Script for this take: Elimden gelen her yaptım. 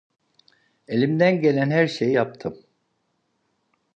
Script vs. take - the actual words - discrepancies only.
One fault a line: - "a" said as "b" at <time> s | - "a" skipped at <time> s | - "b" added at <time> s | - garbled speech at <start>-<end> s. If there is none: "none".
- "şeyi" added at 1.9 s